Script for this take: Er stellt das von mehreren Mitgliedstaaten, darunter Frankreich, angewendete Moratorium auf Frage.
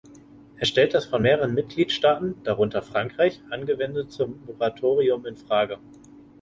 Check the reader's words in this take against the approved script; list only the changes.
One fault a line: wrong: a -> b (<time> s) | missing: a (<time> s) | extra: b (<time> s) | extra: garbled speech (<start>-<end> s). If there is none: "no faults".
wrong: auf -> in (5.2 s)